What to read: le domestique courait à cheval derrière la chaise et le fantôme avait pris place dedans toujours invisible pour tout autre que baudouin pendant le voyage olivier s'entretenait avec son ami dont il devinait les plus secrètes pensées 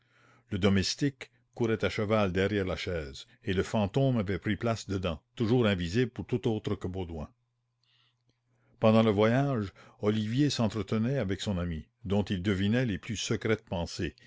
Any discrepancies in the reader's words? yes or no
no